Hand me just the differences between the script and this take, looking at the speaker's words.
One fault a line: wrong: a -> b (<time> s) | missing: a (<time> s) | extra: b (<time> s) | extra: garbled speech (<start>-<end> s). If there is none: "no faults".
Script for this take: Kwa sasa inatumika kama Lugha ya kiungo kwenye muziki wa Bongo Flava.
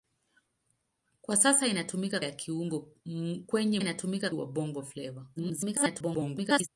missing: kama Lugha (2.2 s)
wrong: muziki -> inatumika (3.8 s)
extra: garbled speech (5.4-6.7 s)